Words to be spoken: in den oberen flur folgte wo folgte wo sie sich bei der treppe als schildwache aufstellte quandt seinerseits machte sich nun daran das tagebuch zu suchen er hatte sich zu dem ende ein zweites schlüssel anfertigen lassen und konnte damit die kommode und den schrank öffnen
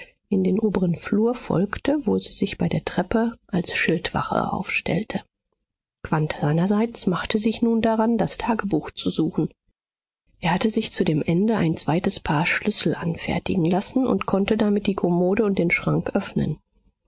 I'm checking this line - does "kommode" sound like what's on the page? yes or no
yes